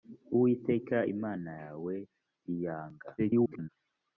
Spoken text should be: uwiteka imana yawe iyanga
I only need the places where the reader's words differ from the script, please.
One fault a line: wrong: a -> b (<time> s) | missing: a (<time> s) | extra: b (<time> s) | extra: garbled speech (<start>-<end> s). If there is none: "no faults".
extra: garbled speech (3.2-3.7 s)